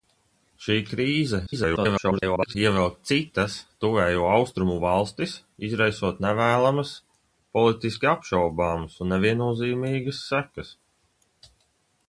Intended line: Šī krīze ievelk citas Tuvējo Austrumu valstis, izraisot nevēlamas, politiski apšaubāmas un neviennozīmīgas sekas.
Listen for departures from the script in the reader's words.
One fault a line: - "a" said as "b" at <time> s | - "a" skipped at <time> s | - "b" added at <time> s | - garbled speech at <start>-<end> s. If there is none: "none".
- garbled speech at 1.5-2.6 s